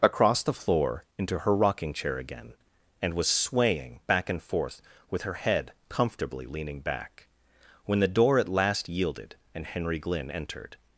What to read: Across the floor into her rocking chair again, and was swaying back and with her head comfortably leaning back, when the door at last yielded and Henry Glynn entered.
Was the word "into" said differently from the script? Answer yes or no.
no